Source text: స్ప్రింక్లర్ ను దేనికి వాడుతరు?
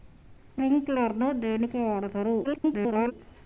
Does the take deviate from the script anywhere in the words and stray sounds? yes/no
yes